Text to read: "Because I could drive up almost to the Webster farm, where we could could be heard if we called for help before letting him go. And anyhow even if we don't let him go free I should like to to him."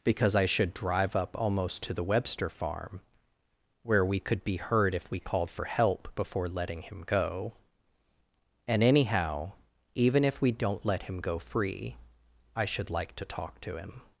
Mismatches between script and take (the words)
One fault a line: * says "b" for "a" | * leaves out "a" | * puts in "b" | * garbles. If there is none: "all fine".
* says "should" for "could"
* leaves out "could"
* puts in "talk"